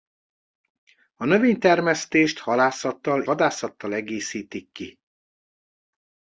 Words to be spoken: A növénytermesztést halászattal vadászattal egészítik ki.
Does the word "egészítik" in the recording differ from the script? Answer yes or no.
no